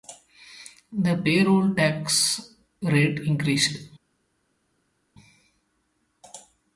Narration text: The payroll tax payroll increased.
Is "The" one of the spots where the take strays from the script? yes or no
no